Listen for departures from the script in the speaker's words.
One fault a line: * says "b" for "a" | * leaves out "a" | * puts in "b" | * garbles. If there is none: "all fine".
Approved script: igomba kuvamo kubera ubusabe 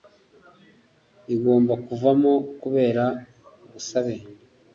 all fine